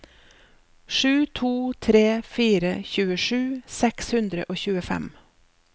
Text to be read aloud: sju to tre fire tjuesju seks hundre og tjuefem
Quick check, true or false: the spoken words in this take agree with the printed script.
true